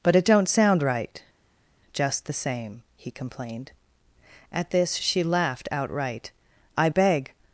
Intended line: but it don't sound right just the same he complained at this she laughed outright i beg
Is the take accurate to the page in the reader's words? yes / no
yes